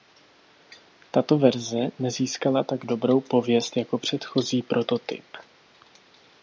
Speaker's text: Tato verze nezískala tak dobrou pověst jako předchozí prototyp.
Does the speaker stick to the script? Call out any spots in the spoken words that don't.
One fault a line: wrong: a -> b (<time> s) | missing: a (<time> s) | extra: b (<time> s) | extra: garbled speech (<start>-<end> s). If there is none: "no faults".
no faults